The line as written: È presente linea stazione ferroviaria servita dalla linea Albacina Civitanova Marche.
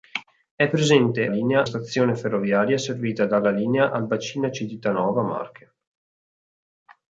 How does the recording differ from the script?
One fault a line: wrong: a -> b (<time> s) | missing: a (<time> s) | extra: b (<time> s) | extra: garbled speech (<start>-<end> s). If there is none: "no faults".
no faults